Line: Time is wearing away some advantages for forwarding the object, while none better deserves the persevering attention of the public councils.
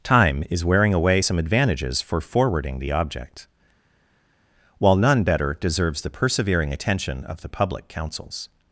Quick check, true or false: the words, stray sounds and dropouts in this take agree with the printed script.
true